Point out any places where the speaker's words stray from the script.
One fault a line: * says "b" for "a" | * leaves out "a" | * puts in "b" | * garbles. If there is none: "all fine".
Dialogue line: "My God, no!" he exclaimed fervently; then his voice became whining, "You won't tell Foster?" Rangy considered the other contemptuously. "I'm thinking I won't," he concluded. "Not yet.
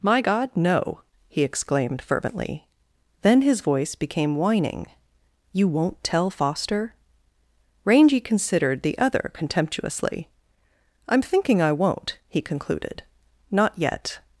all fine